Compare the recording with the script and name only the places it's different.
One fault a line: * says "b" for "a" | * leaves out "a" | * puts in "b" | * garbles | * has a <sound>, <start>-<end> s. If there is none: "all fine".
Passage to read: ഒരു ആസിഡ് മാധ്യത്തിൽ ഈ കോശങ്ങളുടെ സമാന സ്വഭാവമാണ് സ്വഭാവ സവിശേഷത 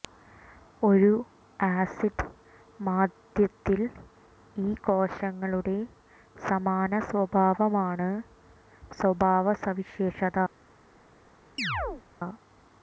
* has a chirp, 11.6-12.0 s